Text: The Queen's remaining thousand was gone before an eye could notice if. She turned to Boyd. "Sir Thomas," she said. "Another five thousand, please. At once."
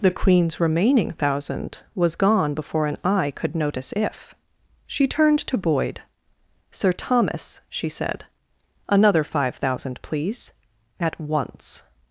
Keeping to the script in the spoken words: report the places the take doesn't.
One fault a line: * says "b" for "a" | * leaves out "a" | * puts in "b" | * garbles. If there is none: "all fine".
all fine